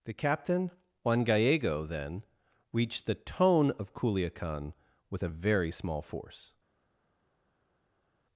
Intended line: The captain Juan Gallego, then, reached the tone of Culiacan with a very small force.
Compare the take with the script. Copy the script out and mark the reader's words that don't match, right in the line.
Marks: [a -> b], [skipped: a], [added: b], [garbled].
The captain Juan Gallego, then, reached the tone of Culiacan with a very small force.